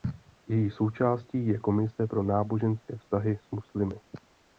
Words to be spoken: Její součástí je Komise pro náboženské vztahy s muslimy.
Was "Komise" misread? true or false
false